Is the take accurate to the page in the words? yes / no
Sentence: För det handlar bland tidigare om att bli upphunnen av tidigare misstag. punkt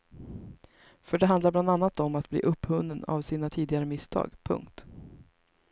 no